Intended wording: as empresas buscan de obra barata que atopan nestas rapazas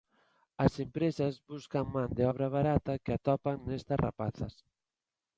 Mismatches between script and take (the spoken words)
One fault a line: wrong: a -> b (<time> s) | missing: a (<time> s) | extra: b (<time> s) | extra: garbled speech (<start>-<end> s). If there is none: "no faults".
extra: man (1.9 s)